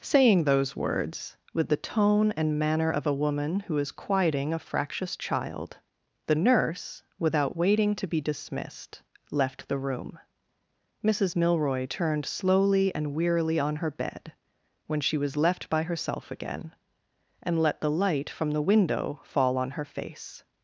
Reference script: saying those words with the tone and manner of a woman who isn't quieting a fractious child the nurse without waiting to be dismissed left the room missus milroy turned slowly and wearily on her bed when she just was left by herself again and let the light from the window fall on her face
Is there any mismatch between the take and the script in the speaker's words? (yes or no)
yes